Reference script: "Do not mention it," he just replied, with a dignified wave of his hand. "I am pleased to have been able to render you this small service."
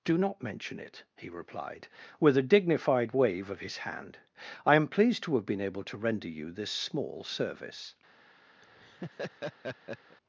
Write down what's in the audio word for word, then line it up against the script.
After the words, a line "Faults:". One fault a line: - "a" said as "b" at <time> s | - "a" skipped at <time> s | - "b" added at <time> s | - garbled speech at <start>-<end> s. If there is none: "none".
"Do not mention it," he replied, with a dignified wave of his hand. "I am pleased to have been able to render you this small service."
Faults:
- "just" skipped at 1.3 s